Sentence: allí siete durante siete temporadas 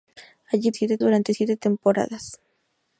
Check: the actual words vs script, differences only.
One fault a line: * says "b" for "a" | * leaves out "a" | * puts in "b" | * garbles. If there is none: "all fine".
all fine